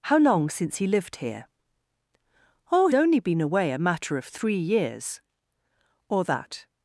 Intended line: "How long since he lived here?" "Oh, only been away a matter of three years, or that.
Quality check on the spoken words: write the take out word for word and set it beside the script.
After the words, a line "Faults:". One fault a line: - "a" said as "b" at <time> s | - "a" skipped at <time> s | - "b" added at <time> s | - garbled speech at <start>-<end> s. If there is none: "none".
"How long since he lived here?" "Oh, only been away a matter of three years, or that.
Faults:
none